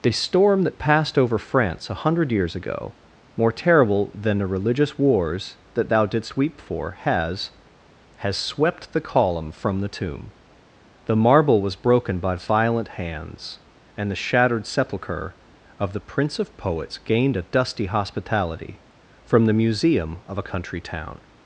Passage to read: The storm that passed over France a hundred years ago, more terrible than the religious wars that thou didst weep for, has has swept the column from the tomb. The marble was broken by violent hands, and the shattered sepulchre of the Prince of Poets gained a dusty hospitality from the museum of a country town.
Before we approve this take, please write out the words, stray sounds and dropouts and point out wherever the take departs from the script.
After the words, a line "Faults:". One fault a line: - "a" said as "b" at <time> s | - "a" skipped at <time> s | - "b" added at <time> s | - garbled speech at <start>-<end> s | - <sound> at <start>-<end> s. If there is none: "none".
The storm that passed over France a hundred years ago, more terrible than the religious wars that thou didst weep for, has has swept the column from the tomb. The marble was broken by violent hands, and the shattered sepulchre of the Prince of Poets gained a dusty hospitality from the museum of a country town.
Faults:
none